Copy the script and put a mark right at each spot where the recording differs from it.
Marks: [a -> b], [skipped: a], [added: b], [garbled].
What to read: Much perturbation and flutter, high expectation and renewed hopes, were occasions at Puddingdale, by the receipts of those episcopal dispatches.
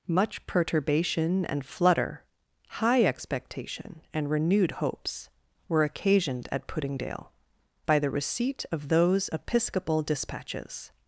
Much perturbation and flutter, high expectation and renewed hopes, were [occasions -> occasioned] at Puddingdale, by the [receipts -> receipt] of those episcopal dispatches.